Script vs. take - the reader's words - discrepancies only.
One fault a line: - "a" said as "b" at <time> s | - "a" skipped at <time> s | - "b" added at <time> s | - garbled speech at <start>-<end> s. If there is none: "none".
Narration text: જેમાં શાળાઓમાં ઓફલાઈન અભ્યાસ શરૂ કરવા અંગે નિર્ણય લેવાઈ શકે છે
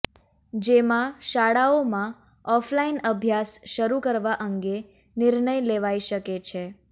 none